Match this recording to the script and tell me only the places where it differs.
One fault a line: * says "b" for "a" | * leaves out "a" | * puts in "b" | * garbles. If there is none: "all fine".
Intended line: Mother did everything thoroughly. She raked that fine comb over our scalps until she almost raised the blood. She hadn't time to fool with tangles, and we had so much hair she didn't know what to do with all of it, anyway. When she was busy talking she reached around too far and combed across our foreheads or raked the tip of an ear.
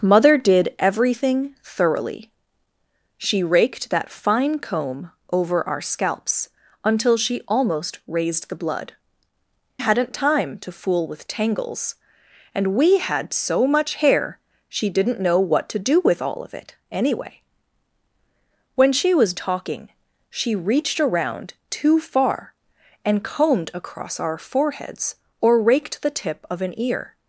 * leaves out "She"
* leaves out "busy"